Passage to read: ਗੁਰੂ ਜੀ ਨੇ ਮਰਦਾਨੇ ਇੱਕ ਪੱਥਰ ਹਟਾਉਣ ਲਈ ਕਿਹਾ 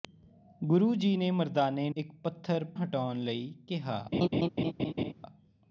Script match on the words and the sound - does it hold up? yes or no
no